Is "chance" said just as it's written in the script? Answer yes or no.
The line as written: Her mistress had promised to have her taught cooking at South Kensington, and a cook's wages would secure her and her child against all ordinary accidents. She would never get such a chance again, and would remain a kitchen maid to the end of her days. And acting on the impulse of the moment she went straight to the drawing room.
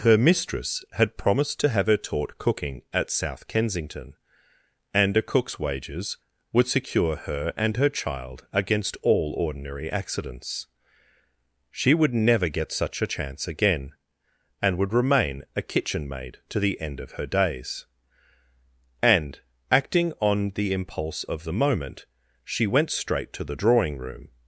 yes